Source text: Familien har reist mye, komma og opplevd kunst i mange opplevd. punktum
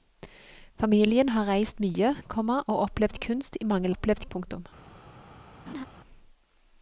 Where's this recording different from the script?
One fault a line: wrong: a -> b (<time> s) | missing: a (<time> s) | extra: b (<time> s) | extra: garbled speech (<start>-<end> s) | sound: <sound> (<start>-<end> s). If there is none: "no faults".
sound: laugh (5.7-5.9 s)